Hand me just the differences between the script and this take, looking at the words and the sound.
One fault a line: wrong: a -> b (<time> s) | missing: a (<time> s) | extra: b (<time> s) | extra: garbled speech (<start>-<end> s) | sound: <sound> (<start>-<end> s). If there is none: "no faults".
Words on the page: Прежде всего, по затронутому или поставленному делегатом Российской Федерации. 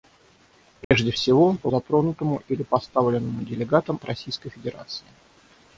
sound: dropout (0.8-0.9 s)